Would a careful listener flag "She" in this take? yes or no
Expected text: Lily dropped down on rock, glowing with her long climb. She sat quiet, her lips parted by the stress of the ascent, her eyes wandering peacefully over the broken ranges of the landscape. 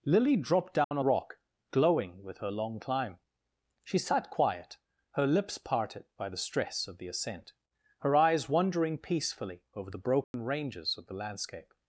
no